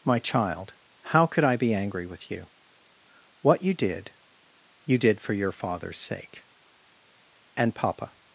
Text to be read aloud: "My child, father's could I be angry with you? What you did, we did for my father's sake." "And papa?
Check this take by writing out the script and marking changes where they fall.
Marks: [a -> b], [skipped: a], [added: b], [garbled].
"My child, [father's -> how] could I be angry with you? What you did, [we -> you] did for [my -> your] father's sake." "And papa?